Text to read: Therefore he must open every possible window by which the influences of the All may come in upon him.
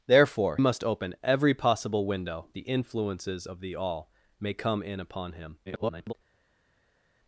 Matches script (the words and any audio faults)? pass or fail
fail